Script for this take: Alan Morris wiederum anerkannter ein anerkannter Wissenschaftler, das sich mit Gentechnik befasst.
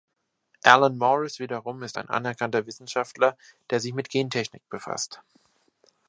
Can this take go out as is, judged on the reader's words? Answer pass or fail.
fail